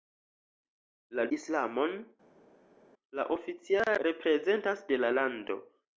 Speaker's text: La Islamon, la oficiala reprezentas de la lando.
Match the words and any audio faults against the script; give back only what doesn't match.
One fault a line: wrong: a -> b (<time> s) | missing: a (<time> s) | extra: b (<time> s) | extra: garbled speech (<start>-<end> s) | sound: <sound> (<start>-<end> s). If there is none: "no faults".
no faults